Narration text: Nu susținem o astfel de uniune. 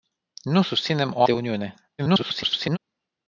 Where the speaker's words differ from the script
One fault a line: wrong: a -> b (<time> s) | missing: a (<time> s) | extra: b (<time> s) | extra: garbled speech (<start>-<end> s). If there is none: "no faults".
missing: astfel (1.2 s)
extra: garbled speech (2.0-2.8 s)